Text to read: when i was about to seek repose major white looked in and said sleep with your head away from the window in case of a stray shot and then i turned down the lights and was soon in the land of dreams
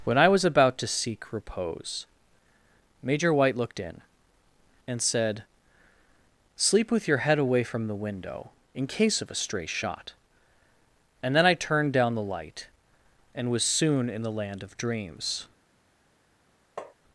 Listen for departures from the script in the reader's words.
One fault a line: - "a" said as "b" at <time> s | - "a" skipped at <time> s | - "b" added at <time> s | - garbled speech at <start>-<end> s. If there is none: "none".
- "lights" said as "light" at 12.2 s